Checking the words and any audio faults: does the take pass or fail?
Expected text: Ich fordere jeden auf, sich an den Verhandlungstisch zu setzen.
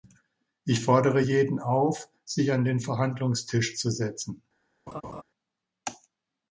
fail